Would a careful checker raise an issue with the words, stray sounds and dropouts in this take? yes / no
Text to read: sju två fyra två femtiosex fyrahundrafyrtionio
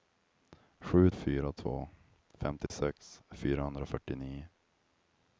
yes